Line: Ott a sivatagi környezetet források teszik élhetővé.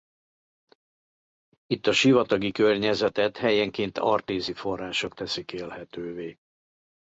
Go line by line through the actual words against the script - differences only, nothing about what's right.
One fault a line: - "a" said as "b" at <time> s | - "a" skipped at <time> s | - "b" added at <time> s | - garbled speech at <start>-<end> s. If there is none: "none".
- "Ott" said as "Itt" at 1.7 s
- "helyenként artézi" added at 3.4 s